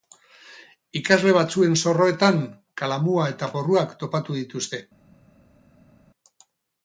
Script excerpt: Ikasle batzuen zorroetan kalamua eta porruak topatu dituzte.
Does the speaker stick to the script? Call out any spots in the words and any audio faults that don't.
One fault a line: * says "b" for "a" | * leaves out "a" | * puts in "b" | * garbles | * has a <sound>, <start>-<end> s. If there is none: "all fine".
all fine